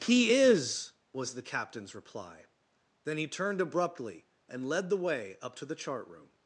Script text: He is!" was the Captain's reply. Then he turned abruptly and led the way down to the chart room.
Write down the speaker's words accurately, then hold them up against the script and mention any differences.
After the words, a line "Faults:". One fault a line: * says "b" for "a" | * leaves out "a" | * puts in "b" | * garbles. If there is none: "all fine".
He is!" was the Captain's reply. Then he turned abruptly and led the way up to the chart room.
Faults:
* says "up" for "down"